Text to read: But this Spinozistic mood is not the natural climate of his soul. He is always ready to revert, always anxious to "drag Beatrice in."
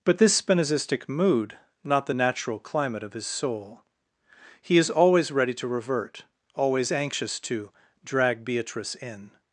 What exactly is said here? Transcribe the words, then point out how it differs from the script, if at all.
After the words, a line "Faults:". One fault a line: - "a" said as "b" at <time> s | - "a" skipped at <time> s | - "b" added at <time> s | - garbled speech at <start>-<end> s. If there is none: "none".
But this Spinozistic mood not the natural climate of his soul. He is always ready to revert, always anxious to "drag Beatrice in."
Faults:
- "is" skipped at 1.6 s